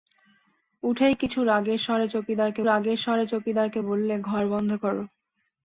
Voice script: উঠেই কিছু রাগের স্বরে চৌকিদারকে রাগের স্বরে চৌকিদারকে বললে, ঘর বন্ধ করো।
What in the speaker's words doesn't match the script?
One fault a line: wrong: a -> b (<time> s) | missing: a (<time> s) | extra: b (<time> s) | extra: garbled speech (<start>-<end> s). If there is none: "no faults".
no faults